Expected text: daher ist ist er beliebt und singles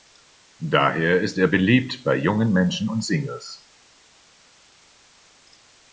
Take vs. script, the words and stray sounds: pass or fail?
fail